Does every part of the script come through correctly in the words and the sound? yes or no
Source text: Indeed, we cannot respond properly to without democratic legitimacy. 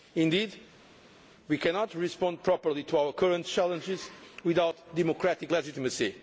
no